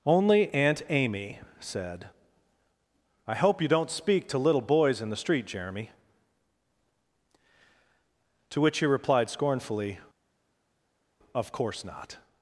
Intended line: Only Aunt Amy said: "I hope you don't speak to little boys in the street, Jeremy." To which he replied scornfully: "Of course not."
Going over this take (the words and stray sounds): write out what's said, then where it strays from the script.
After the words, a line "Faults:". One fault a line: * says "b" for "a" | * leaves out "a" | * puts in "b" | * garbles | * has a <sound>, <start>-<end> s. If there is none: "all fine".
Only Aunt Amy said: "I hope you don't speak to little boys in the street, Jeremy." To which he replied scornfully: "Of course not."
Faults:
all fine